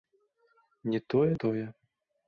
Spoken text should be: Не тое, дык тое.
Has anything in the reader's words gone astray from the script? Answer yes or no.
yes